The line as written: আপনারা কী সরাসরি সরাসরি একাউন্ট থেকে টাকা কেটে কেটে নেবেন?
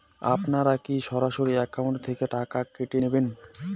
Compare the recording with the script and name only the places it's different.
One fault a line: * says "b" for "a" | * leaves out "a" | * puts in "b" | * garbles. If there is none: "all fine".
* leaves out "সরাসরি"
* leaves out "কেটে"